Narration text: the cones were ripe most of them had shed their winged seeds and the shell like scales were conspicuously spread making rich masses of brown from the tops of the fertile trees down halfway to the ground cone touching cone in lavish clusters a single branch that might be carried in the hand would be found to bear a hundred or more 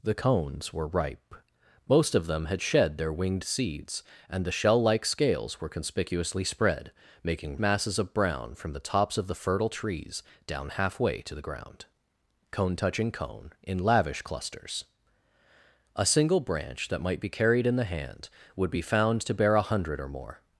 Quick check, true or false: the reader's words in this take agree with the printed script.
false